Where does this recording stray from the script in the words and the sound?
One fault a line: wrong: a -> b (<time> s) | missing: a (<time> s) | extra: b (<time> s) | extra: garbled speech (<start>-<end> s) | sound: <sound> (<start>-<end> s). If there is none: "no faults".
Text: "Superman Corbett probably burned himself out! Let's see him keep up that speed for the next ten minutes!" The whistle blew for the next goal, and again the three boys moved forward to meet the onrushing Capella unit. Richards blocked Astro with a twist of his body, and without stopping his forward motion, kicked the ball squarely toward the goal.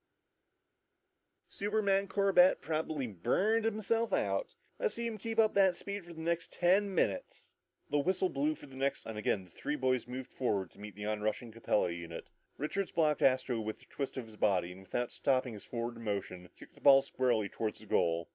missing: goal (9.1 s)